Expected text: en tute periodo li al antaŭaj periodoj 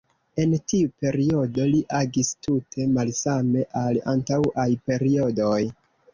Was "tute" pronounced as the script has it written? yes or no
no